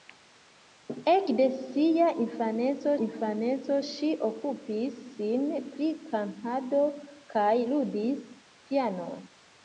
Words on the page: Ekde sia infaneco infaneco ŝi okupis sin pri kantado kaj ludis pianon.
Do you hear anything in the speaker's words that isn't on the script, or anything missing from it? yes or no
no